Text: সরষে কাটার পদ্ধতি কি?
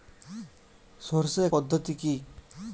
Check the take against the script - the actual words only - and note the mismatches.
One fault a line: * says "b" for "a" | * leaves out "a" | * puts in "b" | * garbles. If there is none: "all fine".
* leaves out "কাটার"